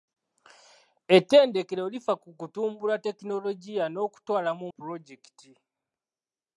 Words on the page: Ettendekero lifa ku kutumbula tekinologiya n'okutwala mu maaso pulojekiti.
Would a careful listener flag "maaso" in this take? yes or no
yes